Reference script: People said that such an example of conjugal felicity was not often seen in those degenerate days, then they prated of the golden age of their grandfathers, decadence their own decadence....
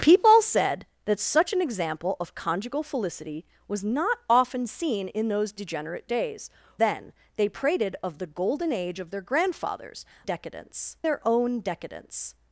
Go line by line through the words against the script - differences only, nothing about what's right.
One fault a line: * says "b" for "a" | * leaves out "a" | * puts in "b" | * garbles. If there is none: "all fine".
all fine